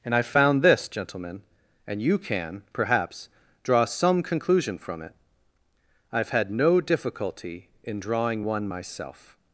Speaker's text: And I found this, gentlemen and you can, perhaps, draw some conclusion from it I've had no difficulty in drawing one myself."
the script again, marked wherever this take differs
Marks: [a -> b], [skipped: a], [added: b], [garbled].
And I found this, gentlemen and you can, perhaps, draw some conclusion from it I've had no difficulty in drawing one myself."